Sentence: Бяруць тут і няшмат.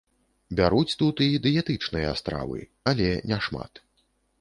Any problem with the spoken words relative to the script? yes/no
yes